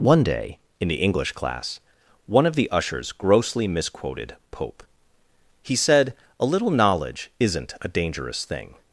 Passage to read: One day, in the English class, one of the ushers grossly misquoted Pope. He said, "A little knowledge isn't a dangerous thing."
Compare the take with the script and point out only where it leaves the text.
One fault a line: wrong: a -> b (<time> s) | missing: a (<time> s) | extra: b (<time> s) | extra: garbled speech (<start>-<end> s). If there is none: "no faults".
no faults